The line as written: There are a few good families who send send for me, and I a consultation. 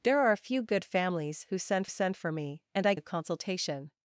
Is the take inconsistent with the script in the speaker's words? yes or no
no